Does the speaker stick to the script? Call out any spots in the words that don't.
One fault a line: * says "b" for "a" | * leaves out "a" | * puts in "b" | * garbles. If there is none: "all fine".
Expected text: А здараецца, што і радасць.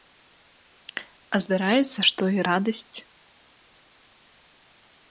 all fine